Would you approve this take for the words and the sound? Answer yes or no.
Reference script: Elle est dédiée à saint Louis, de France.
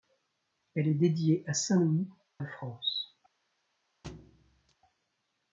no